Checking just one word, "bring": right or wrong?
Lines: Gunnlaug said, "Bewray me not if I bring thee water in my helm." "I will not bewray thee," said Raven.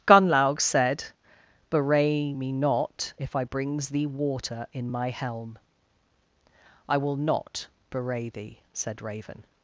wrong